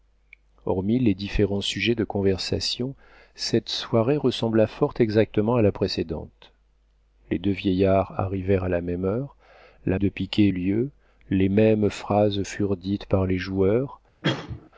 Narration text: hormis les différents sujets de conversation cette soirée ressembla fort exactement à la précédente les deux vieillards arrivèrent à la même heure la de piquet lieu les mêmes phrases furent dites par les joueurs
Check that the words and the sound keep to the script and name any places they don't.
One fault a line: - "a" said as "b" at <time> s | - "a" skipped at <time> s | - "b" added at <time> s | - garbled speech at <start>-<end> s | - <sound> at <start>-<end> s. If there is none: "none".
- cough at 14.2-14.7 s